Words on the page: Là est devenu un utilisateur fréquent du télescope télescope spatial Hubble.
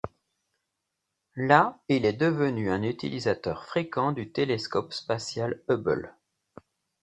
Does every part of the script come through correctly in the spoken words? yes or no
no